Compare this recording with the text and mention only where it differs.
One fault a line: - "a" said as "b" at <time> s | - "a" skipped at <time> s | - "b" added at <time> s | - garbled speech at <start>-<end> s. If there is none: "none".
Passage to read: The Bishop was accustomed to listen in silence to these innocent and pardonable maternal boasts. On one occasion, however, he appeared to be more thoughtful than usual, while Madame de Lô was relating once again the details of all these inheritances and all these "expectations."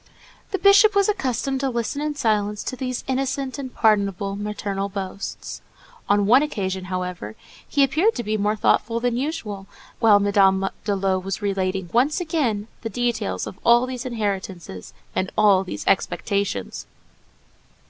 none